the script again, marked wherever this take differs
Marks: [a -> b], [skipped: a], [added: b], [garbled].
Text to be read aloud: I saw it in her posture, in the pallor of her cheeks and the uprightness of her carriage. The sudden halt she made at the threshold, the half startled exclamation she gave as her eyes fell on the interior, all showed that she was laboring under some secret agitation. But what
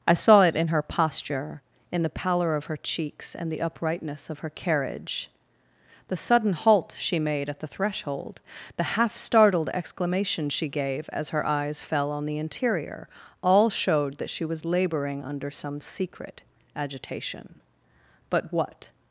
I saw it in her posture, in the pallor of her cheeks and the uprightness of her carriage. The sudden halt she made at the threshold, the half startled exclamation she gave as her eyes fell on the interior, all showed that she was laboring under some secret agitation. But what